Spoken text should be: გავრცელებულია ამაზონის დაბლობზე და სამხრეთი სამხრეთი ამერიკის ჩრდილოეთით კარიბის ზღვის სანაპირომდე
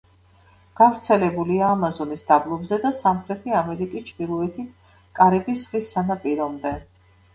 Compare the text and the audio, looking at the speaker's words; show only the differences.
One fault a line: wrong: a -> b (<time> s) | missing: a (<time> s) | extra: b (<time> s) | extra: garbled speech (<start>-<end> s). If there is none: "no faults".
missing: სამხრეთი (3.5 s)